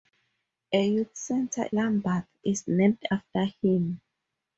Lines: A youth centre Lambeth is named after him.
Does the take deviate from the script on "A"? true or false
false